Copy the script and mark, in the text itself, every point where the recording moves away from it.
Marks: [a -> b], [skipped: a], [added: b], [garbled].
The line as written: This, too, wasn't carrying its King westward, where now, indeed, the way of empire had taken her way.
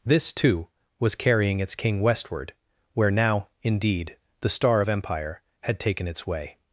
This, too, [wasn't -> was] carrying its King westward, where now, indeed, the [way -> star] of empire had taken [her -> its] way.